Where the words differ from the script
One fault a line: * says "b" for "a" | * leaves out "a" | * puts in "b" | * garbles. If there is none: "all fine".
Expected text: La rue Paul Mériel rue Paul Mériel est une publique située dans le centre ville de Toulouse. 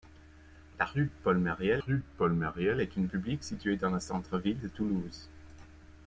all fine